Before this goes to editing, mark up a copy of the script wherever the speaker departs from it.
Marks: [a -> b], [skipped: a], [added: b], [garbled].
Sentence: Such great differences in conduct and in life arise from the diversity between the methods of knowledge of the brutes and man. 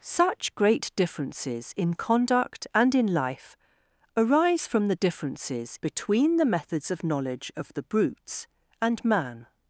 Such great differences in conduct and in life arise from the [diversity -> differences] between the methods of knowledge of the brutes and man.